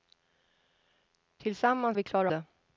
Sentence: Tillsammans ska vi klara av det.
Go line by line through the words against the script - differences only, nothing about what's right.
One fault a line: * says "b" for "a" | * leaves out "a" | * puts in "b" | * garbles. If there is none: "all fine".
* leaves out "ska"
* leaves out "av"